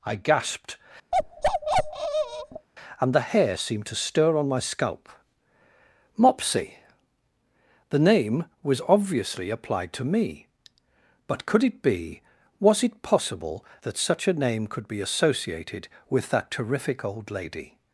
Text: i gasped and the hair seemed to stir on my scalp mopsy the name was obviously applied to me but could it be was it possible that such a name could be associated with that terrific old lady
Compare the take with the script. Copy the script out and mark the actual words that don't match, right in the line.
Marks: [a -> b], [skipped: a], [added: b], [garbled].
i gasped and the hair seemed to stir on my scalp mopsy the name was obviously applied to me but could it be was it possible that such a name could be associated with that terrific old lady